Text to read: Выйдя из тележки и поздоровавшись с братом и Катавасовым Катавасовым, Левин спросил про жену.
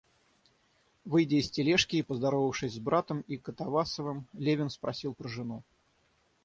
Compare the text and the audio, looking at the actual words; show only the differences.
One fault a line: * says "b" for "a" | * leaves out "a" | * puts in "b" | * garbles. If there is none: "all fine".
* leaves out "Катавасовым"